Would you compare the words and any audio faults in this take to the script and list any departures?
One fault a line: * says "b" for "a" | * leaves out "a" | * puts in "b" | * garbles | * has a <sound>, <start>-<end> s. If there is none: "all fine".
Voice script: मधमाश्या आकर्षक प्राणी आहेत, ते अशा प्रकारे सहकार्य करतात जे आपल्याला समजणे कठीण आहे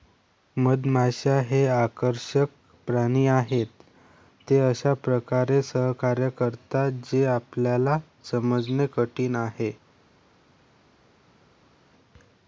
* puts in "हे"